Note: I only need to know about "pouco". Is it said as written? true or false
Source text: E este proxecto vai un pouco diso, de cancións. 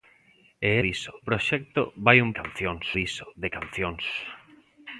false